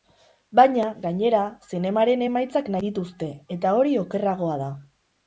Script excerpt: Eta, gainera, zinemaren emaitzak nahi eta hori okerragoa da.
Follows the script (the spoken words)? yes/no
no